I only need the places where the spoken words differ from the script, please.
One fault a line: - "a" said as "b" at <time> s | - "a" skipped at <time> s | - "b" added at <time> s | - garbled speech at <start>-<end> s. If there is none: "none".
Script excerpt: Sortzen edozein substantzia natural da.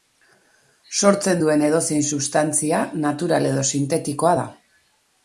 - "duen" added at 1.4 s
- "edo sintetikoa" added at 3.5 s